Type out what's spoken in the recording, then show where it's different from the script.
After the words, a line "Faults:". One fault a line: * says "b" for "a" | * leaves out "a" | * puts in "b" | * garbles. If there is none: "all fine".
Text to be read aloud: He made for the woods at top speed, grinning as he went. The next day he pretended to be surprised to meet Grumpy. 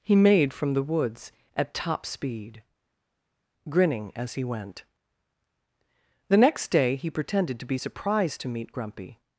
He made from the woods at top speed, grinning as he went. The next day he pretended to be surprised to meet Grumpy.
Faults:
* says "from" for "for"